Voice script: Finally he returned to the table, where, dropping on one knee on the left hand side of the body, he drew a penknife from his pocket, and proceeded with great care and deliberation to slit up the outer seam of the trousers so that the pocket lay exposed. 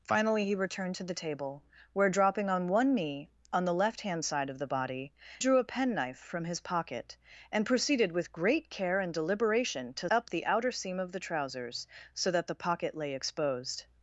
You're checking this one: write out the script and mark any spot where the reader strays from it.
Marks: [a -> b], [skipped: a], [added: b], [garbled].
Finally he returned to the table, where, dropping on one knee on the left hand side of the body, [skipped: he] drew a penknife from his pocket, and proceeded with great care and deliberation to [skipped: slit] up the outer seam of the trousers so that the pocket lay exposed.